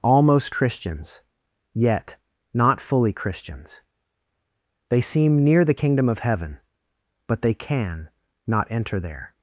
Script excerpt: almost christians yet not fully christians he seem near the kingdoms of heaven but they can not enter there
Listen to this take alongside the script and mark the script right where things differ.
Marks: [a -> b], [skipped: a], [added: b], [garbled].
almost christians yet not fully christians [he -> they] seem near the [kingdoms -> kingdom] of heaven but they can not enter there